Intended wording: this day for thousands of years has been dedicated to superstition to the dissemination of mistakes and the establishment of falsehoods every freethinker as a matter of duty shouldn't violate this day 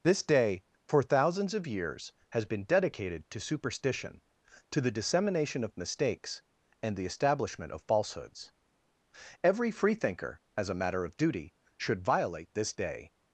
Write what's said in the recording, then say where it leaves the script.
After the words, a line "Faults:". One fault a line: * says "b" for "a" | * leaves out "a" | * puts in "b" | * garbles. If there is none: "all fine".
this day for thousands of years has been dedicated to superstition to the dissemination of mistakes and the establishment of falsehoods every freethinker as a matter of duty should violate this day
Faults:
* says "should" for "shouldn't"